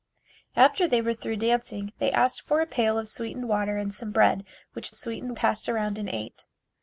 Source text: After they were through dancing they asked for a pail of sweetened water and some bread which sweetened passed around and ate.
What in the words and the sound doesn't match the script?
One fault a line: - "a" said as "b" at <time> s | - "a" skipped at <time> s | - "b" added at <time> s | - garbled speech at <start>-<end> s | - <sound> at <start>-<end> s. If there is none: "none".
none